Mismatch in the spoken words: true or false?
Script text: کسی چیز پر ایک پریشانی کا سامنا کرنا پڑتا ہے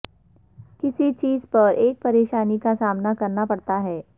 false